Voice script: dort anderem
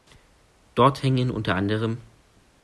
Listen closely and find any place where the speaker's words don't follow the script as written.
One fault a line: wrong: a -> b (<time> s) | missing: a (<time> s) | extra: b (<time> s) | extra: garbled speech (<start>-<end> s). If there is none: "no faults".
extra: hängen unter (1.0 s)